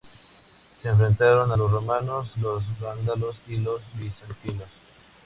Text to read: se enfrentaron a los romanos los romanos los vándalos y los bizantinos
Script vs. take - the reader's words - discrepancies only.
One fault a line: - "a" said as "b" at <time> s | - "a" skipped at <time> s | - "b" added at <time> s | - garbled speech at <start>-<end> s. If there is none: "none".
- "romanos los" skipped at 2.6 s